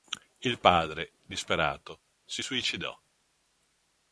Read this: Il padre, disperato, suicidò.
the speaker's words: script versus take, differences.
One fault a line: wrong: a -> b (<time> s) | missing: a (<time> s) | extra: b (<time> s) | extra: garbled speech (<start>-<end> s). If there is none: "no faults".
extra: si (2.2 s)